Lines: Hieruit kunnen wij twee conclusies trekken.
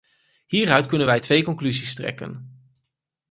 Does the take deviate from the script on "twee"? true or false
false